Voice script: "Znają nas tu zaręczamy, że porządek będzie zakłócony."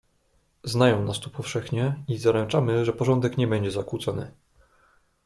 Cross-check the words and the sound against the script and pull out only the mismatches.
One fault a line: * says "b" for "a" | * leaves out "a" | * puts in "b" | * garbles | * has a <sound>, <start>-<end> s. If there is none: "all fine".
* puts in "powszechnie i"
* puts in "nie"